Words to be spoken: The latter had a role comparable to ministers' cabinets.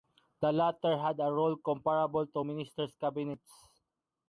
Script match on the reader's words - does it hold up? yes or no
yes